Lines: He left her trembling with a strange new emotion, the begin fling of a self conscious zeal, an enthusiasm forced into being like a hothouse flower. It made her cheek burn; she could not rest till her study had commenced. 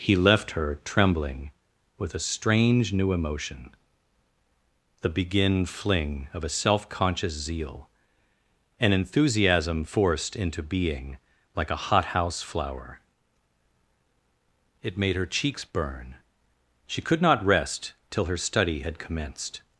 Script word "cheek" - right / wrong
wrong